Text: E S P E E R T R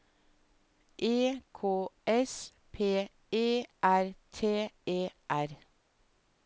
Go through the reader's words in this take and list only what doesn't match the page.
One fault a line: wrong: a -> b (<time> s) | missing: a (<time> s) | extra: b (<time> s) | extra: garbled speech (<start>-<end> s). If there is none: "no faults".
extra: K (1.5 s)
missing: E (3.6 s)
extra: E (4.9 s)